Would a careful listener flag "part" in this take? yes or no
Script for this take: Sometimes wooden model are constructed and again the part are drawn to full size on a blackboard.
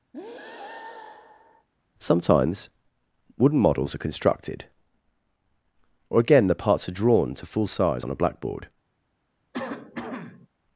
yes